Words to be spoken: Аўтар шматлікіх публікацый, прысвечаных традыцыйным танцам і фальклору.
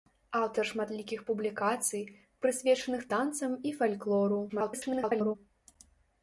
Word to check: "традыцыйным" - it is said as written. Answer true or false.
false